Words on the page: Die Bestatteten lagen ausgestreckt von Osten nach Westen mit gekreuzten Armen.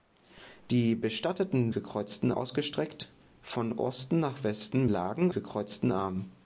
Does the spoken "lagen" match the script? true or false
false